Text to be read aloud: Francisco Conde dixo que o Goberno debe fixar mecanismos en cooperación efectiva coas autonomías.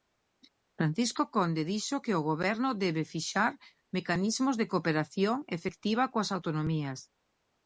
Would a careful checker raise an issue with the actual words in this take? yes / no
yes